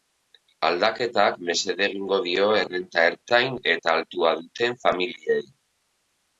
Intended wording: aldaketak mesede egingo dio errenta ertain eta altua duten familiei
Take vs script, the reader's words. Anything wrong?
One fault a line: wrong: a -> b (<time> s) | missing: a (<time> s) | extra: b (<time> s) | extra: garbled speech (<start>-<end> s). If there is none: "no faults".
no faults